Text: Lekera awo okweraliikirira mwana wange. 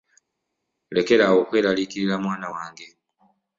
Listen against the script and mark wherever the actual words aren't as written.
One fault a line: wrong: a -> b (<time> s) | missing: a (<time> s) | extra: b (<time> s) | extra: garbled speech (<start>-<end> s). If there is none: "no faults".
no faults